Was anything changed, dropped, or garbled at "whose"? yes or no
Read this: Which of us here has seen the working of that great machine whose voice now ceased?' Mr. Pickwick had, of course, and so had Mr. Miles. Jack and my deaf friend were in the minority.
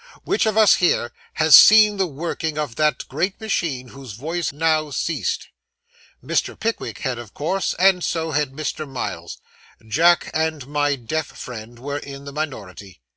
no